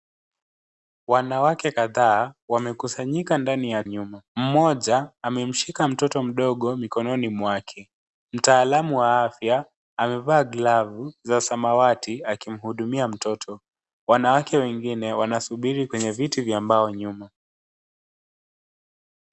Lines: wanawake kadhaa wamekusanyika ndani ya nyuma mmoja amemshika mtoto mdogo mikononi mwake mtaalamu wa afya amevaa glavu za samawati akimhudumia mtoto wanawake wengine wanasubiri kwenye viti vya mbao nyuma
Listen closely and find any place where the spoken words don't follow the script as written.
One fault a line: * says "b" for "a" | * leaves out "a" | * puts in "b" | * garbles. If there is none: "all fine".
all fine